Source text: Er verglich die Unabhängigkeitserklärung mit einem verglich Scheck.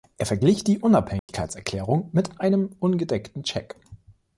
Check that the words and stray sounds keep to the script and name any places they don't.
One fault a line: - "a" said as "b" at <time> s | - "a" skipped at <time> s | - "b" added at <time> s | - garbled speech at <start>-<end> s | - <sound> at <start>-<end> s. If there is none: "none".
- dropout at 1.2-1.3 s
- "verglich" said as "ungedeckten" at 2.8 s